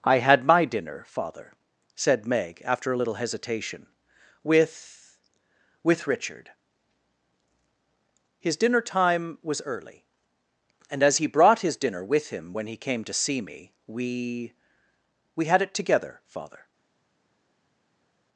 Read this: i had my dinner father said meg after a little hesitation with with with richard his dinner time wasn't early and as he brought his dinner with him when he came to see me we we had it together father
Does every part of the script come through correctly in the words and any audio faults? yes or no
no